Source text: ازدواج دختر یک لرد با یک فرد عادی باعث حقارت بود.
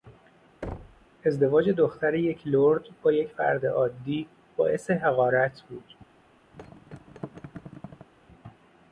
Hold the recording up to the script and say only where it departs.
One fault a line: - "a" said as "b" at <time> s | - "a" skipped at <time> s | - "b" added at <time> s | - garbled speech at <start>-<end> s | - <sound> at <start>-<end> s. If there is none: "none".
- thud at 0.6-1.1 s
- thud at 6.5-8.1 s